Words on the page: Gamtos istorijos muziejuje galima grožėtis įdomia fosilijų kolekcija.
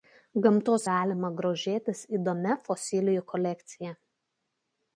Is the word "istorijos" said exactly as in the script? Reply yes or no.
no